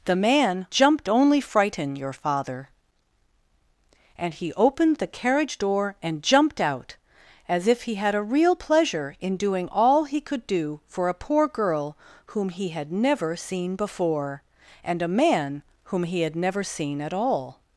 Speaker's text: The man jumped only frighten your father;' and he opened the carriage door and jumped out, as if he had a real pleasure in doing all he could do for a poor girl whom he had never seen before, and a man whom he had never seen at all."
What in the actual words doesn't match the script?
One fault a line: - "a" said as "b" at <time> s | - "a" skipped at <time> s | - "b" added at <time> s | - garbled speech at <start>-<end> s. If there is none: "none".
none